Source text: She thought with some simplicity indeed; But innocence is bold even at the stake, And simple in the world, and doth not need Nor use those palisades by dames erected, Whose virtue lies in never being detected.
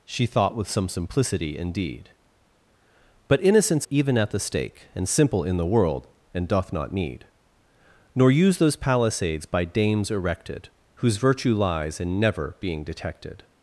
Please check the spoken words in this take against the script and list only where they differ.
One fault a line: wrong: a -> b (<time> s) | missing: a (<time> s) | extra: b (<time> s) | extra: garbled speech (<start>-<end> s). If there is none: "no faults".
missing: is bold (3.9 s)